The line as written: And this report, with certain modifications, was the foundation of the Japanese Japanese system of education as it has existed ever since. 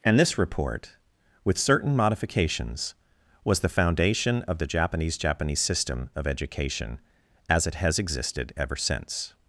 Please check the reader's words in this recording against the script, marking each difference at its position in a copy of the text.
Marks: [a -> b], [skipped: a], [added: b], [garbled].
And this report, with certain modifications, was the foundation of the Japanese Japanese system of education as it has existed ever since.